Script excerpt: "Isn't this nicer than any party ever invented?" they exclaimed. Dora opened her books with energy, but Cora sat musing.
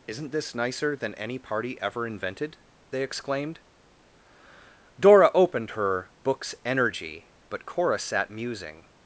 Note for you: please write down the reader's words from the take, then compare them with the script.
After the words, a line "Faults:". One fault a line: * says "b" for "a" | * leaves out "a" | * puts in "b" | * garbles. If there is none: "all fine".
"Isn't this nicer than any party ever invented?" they exclaimed. Dora opened her books energy, but Cora sat musing.
Faults:
* leaves out "with"